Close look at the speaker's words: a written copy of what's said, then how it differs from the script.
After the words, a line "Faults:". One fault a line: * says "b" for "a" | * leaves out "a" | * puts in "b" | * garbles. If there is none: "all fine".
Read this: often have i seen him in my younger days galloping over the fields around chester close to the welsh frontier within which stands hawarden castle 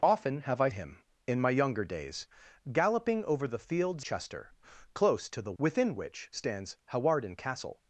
often have i him in my younger days galloping over the fields chester close to the within which stands hawarden castle
Faults:
* leaves out "seen"
* leaves out "around"
* leaves out "welsh frontier"